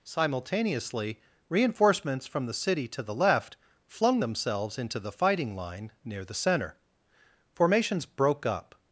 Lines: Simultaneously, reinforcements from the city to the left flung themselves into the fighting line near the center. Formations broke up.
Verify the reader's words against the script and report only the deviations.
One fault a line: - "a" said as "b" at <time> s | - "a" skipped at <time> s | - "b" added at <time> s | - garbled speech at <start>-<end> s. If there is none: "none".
none